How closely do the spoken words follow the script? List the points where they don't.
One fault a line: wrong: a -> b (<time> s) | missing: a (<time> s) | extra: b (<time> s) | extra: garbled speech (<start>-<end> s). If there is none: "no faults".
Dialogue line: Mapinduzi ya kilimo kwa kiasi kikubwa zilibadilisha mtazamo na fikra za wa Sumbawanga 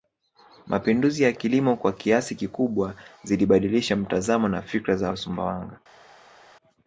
no faults